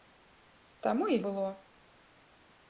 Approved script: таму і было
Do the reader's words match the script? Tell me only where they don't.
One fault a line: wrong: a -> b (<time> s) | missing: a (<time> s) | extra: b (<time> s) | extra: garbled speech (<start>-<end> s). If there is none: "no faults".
no faults